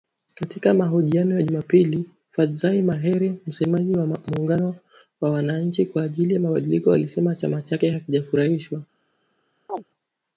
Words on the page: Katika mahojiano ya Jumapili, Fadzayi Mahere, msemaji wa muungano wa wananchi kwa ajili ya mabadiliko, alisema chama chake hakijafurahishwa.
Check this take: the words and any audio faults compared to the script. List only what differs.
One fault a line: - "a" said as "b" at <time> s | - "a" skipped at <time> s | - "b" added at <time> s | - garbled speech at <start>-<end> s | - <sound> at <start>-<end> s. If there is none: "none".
- chirp at 9.7-9.8 s